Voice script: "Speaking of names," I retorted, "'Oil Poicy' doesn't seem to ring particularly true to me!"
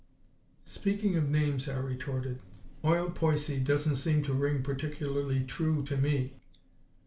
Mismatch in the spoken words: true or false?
false